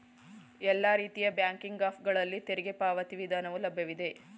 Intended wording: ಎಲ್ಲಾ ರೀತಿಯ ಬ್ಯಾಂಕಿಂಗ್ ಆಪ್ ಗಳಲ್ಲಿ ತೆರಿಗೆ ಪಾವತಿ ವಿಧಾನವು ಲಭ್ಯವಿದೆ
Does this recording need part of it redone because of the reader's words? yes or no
no